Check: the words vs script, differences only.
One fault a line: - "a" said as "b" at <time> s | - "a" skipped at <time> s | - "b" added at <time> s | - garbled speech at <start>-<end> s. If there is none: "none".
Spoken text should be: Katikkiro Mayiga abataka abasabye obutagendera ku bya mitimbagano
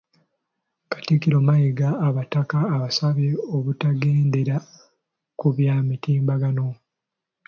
none